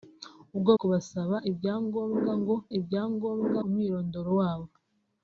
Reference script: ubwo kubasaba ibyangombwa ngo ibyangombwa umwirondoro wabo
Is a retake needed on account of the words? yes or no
no